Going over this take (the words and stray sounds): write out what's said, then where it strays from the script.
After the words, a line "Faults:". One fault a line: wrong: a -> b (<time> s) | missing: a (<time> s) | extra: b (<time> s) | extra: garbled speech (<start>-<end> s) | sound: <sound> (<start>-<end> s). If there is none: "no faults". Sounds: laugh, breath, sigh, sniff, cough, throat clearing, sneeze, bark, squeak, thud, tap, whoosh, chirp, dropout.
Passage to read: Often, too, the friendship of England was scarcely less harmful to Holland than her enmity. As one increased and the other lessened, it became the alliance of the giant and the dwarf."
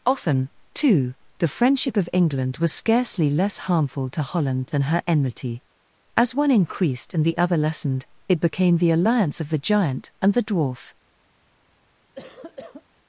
Often, too, the friendship of England was scarcely less harmful to Holland than her enmity. As one increased and the other lessened, it became the alliance of the giant and the dwarf."
Faults:
sound: cough (12.2-12.8 s)